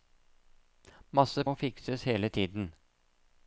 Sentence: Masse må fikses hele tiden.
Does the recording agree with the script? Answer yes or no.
yes